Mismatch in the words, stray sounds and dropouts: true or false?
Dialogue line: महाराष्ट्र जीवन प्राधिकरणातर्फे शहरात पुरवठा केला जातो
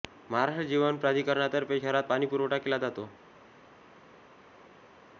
true